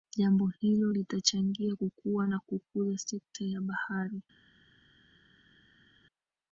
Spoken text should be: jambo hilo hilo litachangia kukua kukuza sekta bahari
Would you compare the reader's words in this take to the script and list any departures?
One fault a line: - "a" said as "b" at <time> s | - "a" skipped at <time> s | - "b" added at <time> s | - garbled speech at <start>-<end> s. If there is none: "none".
- "hilo" skipped at 0.9 s
- "na" added at 2.3 s
- "ya" added at 3.4 s